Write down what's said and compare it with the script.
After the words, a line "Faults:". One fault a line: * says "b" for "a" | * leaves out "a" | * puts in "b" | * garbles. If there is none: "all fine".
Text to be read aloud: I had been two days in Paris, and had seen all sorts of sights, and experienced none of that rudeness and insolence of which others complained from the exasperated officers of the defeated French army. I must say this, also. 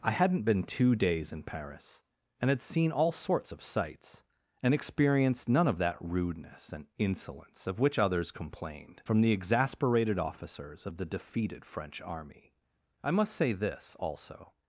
I hadn't been two days in Paris, and had seen all sorts of sights, and experienced none of that rudeness and insolence of which others complained from the exasperated officers of the defeated French army. I must say this, also.
Faults:
* says "hadn't" for "had"